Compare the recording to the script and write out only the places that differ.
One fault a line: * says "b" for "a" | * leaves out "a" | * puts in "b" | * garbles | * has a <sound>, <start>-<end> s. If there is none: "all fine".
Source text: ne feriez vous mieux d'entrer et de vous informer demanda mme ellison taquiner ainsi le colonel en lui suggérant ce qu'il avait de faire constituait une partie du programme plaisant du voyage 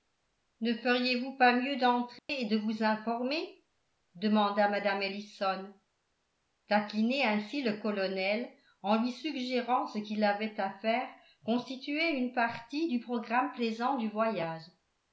* puts in "pas"
* has a dropout, 2.2-2.3 s
* says "à" for "de"